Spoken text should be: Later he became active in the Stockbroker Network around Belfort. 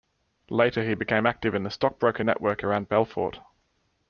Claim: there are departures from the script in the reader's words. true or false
false